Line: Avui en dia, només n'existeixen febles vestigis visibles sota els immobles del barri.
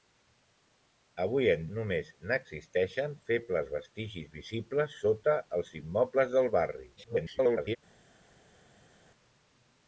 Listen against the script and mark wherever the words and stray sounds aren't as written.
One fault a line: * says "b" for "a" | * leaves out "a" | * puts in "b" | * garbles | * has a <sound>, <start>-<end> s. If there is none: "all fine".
* leaves out "dia"
* garbles